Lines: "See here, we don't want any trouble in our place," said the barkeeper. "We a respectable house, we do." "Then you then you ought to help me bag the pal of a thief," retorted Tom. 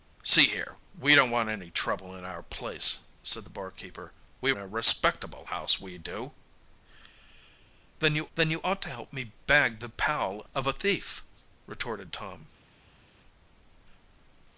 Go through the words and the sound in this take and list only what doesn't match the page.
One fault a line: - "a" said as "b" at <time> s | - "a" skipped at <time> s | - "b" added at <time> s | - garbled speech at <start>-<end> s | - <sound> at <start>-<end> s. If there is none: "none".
none